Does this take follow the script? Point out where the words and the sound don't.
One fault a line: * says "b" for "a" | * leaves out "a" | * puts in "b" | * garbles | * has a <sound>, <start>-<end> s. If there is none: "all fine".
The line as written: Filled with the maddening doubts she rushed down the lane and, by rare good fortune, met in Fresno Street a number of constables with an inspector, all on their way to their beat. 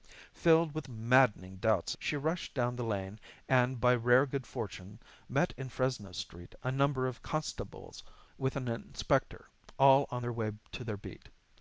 all fine